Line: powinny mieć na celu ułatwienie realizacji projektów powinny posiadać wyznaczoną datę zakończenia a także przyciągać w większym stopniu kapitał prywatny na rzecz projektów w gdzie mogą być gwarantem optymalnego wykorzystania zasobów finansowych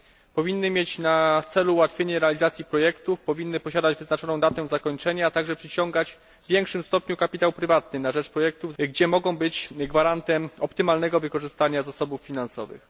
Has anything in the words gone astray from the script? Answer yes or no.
no